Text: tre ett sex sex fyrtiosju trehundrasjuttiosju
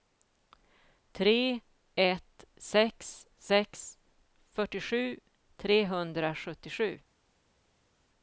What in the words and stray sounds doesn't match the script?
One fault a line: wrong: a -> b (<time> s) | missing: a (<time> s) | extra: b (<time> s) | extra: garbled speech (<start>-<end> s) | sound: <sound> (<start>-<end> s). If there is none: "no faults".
no faults